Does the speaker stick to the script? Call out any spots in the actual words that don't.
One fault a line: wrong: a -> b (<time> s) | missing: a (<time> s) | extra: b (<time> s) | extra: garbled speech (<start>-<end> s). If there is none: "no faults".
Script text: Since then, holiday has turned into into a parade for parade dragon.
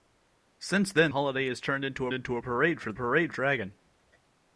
no faults